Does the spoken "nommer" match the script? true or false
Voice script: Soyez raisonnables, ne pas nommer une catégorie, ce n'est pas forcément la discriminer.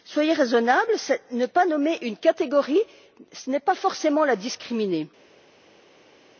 true